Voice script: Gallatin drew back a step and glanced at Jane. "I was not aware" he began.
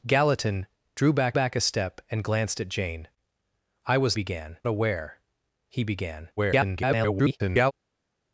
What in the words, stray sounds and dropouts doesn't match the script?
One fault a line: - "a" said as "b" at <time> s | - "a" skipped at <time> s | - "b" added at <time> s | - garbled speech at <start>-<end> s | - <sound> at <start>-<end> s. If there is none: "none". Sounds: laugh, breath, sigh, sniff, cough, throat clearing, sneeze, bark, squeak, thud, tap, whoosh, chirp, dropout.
- "back" added at 1.3 s
- "not" said as "began" at 4.1 s
- garbled speech at 6.4-7.7 s